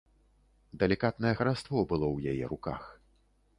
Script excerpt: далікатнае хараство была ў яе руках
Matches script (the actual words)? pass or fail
fail